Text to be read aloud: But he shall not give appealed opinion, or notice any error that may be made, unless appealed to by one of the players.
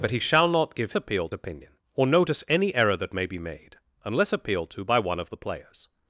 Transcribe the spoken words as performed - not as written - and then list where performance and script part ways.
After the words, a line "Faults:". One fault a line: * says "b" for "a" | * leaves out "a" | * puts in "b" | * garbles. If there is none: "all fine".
But he shall not give appealed opinion, or notice any error that may be made, unless appealed to by one of the players.
Faults:
all fine